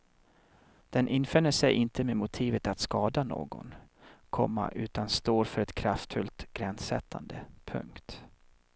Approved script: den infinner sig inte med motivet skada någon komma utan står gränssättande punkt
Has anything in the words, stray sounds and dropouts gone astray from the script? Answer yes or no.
yes